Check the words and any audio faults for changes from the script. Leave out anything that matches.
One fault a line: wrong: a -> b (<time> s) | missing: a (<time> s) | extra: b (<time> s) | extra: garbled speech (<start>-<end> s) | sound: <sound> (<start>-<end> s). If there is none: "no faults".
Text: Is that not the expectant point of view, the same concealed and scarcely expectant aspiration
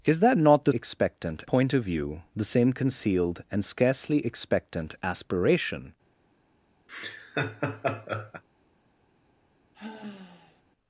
sound: laugh (6.9-8.4 s)
sound: sigh (9.7-10.6 s)